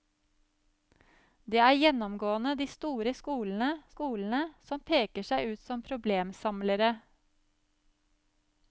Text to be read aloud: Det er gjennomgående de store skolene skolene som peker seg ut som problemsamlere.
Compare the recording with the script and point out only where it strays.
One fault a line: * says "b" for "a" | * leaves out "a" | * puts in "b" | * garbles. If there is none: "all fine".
all fine